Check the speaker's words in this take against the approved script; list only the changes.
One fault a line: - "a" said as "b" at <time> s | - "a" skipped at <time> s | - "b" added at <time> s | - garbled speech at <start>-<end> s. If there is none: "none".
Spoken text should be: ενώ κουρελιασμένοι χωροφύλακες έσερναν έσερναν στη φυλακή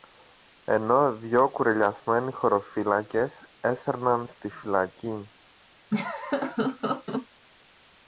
- "δυο" added at 1.1 s
- "έσερναν" skipped at 4.3 s